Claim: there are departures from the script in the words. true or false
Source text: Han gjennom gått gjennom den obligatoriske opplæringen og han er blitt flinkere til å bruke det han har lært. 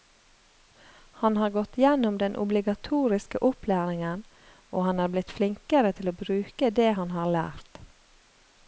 true